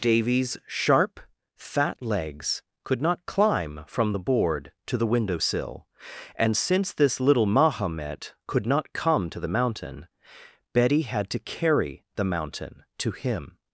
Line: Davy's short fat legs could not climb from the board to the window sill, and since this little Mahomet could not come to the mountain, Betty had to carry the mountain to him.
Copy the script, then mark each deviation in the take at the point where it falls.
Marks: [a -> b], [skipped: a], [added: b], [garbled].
Davy's [short -> sharp] fat legs could not climb from the board to the window sill, and since this little Mahomet could not come to the mountain, Betty had to carry the mountain to him.